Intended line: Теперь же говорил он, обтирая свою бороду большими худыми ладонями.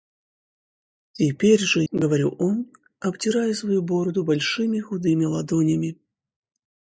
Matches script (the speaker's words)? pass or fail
pass